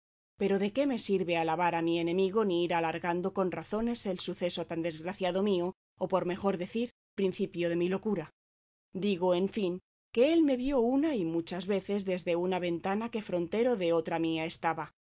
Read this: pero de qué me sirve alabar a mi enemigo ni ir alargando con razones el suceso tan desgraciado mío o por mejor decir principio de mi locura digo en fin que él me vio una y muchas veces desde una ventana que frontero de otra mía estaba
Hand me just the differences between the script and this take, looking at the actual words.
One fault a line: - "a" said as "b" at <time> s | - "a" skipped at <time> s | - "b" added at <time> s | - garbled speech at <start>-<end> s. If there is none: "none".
none